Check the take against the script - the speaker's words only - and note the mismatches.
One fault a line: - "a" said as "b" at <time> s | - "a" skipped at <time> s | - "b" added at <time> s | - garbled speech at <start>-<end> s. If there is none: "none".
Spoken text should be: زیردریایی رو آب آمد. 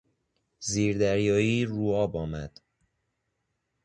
none